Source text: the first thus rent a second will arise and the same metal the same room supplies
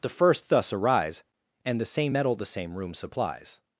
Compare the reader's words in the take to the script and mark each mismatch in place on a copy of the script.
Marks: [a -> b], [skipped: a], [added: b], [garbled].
the first thus [skipped: rent a second will] arise and the same metal the same room supplies